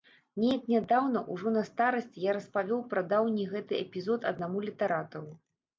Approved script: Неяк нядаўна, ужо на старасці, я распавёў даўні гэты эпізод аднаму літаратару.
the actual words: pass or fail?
fail